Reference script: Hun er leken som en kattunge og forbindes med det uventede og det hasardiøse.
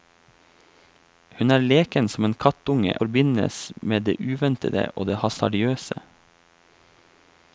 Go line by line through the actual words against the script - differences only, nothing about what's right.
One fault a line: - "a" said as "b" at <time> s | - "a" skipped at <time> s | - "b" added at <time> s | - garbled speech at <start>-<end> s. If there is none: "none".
- "og" skipped at 2.9 s